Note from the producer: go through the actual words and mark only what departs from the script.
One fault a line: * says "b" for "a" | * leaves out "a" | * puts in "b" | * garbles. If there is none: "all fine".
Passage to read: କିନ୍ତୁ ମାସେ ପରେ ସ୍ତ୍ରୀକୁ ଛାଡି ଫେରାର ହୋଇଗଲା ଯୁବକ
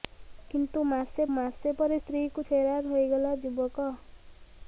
* puts in "ମାସେ"
* leaves out "ଛାଡି"